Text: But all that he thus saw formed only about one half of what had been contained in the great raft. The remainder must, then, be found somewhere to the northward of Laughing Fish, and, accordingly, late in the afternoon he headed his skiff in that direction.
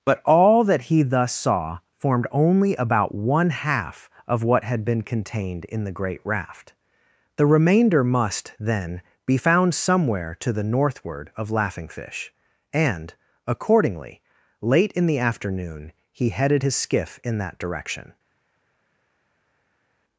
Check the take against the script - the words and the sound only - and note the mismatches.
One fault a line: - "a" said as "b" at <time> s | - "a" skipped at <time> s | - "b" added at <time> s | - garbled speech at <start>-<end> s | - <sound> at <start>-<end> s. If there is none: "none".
none